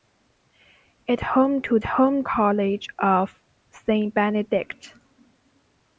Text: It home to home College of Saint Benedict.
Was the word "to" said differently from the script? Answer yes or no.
no